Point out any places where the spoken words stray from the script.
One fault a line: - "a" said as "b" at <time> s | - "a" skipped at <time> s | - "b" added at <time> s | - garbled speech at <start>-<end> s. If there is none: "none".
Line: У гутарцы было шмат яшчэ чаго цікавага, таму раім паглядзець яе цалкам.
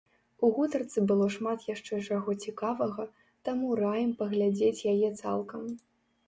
none